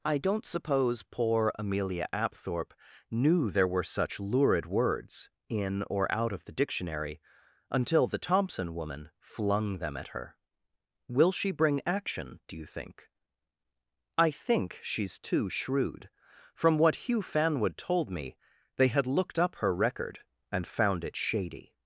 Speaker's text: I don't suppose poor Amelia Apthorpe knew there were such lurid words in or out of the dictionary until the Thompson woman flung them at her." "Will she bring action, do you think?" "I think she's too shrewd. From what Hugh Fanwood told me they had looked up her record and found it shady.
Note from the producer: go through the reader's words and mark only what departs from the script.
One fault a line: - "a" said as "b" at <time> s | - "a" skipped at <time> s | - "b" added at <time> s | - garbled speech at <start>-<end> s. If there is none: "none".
none